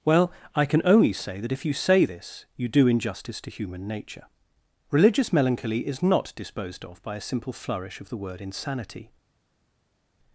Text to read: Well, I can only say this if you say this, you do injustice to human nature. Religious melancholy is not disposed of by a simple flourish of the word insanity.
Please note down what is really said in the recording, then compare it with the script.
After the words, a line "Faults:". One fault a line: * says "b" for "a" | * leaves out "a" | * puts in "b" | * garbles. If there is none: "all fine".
Well, I can only say that if you say this, you do injustice to human nature. Religious melancholy is not disposed of by a simple flourish of the word insanity.
Faults:
* says "that" for "this"